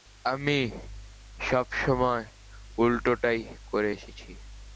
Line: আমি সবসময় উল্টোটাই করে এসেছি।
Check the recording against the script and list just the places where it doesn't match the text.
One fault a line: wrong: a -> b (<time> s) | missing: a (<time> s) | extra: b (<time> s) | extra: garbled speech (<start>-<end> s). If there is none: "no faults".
no faults